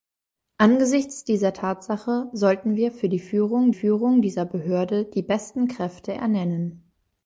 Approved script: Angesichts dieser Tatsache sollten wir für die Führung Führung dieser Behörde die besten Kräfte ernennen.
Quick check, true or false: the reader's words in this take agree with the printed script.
true